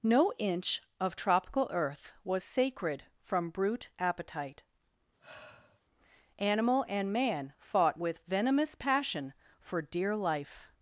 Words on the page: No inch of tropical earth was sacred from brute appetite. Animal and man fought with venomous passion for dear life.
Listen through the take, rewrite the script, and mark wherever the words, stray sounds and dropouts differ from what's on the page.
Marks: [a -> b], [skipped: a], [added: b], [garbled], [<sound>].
No inch of tropical earth was sacred from brute appetite. [sigh] Animal and man fought with venomous passion for dear life.